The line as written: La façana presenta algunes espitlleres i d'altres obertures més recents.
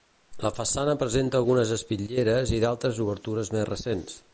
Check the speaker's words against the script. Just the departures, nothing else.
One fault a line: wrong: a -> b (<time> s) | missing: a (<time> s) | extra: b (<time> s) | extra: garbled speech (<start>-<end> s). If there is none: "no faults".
no faults